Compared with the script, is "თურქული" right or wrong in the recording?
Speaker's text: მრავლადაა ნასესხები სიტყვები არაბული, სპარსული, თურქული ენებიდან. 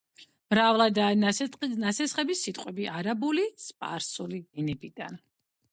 wrong